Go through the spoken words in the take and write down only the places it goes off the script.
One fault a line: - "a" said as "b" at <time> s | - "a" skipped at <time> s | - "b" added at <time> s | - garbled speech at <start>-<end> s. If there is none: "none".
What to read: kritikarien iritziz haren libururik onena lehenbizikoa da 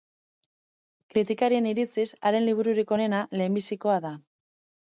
none